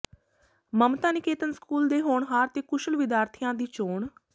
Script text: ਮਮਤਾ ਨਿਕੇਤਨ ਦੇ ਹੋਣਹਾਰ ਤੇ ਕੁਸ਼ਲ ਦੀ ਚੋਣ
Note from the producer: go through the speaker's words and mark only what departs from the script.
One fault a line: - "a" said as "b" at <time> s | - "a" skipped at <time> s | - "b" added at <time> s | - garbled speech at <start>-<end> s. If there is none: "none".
- "ਸਕੂਲ" added at 1.5 s
- "ਵਿਦਿਆਰਥੀਆਂ" added at 3.0 s